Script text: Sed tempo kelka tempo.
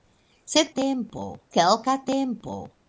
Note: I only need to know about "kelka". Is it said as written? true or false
true